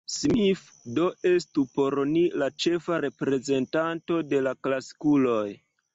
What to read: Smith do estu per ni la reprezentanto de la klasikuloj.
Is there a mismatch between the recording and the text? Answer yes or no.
yes